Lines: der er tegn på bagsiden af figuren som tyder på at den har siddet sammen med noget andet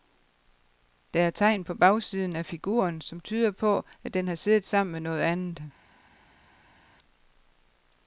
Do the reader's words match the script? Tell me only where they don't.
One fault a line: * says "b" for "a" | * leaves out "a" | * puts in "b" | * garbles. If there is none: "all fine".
all fine